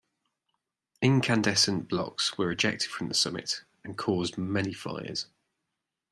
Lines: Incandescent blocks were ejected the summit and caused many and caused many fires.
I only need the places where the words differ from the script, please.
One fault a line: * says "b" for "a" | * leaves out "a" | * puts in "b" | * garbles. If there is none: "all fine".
* puts in "from"
* leaves out "and caused many"